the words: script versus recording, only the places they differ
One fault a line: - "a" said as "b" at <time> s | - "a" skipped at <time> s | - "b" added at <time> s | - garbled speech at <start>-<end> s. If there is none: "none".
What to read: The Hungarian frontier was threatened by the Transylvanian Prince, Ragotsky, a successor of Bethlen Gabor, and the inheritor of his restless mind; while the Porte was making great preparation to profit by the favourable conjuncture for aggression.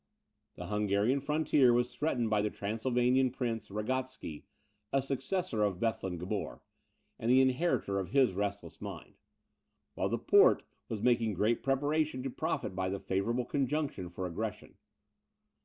none